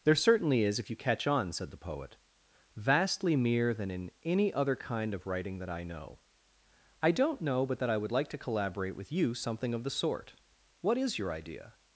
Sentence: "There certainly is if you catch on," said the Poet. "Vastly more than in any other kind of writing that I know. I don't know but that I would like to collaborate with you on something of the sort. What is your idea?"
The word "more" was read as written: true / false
false